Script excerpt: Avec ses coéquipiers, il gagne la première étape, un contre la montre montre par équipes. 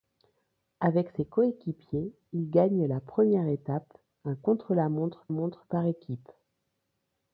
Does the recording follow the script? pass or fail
pass